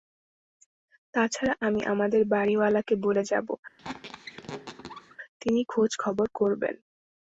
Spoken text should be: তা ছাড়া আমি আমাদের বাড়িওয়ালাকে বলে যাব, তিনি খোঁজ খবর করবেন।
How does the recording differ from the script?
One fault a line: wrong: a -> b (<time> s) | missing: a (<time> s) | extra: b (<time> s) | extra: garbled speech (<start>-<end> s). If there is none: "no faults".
no faults